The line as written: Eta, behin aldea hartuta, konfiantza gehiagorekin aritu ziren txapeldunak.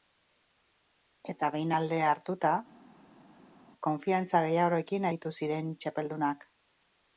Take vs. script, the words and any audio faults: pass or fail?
pass